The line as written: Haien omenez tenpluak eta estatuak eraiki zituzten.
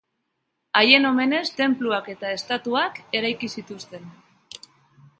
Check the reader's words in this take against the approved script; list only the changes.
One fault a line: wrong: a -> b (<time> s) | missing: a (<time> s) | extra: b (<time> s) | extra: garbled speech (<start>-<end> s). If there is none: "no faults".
no faults